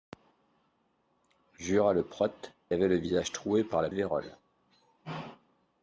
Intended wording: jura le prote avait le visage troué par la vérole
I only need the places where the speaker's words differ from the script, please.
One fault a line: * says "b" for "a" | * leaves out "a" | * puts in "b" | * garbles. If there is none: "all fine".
all fine